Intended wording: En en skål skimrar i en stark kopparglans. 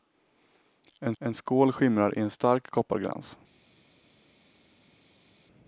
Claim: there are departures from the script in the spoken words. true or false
false